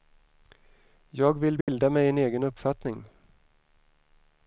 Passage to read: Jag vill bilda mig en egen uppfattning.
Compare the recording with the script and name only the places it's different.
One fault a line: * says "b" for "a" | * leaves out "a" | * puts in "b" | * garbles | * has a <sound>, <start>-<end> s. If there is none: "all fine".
* has a dropout, 1.6-1.7 s